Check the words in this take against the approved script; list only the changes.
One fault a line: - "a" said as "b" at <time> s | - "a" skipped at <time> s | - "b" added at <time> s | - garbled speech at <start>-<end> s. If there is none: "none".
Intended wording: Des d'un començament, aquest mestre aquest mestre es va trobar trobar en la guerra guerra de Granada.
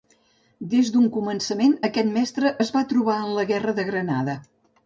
- "aquest mestre" skipped at 2.5 s
- "trobar" skipped at 3.2 s
- "guerra" skipped at 3.8 s